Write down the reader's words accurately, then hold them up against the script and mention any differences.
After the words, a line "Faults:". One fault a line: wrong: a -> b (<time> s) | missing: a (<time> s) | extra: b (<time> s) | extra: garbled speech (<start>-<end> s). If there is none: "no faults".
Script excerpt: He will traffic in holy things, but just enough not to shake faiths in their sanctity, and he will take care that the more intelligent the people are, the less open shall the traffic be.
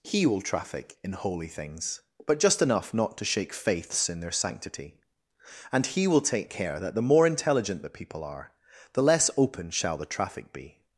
He will traffic in holy things, but just enough not to shake faiths in their sanctity, and he will take care that the more intelligent the people are, the less open shall the traffic be.
Faults:
no faults